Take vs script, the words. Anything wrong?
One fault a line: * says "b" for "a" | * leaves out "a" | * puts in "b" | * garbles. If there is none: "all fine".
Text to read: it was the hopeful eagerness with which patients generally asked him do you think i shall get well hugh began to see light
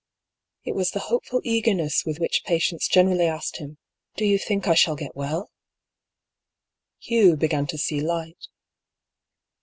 all fine